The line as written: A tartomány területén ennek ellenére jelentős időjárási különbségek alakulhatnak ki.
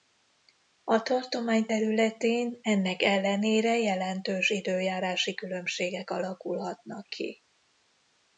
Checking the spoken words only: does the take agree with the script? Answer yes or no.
yes